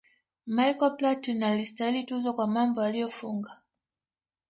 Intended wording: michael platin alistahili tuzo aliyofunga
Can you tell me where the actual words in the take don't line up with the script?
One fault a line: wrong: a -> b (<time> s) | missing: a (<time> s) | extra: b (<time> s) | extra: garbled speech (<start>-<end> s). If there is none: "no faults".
extra: kwa mambo (2.3 s)